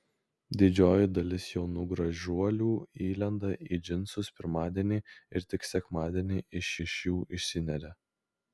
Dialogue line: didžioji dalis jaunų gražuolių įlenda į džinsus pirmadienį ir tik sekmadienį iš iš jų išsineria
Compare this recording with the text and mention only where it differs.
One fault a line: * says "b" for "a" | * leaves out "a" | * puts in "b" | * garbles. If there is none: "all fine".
all fine